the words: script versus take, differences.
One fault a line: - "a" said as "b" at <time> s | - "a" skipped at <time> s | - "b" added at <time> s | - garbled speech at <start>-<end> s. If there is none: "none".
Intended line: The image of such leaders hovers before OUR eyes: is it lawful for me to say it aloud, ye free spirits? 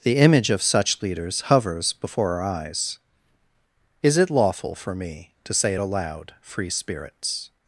- "ye" skipped at 6.3 s